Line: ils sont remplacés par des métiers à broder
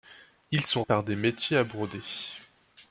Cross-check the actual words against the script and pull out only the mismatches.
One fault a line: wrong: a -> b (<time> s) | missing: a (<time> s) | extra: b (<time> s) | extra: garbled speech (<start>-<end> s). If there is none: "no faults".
missing: remplacés (0.8 s)